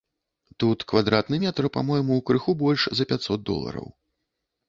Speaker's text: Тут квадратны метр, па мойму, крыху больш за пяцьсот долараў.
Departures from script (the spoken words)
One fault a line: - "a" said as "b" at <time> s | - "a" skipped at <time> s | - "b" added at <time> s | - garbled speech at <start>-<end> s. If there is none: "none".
none